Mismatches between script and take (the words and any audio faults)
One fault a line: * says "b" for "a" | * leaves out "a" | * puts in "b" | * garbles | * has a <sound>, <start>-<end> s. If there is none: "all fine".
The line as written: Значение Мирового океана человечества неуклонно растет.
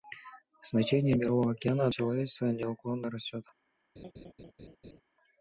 * has a laugh, 4.0-5.0 s